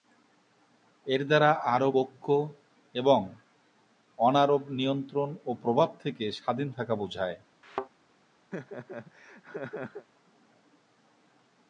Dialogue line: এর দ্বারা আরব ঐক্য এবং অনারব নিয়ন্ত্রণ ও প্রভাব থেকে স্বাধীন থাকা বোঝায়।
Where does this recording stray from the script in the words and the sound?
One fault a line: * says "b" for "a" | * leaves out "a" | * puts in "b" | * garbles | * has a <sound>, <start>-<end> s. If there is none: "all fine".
* has a thud, 7.6-7.9 s
* has a laugh, 8.5-10.1 s